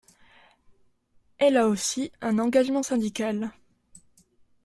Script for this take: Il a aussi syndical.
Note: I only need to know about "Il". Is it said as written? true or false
false